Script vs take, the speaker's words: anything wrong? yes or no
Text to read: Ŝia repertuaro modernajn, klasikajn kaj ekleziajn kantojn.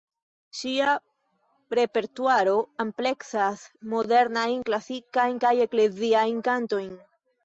yes